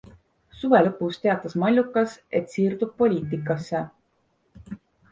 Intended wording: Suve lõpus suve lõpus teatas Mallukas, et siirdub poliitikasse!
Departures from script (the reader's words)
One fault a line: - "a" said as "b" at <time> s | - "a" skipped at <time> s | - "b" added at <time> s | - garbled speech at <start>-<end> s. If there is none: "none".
- "suve lõpus" skipped at 1.2 s